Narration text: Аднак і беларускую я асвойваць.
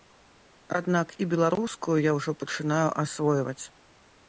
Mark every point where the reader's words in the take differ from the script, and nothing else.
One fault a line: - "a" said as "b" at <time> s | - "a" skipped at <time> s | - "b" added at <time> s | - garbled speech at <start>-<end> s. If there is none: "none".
- "ўжо пачынаю" added at 2.2 s